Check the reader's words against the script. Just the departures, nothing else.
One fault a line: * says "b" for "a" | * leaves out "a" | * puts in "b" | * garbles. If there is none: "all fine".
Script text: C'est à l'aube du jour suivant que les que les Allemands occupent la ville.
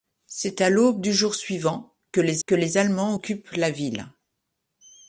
all fine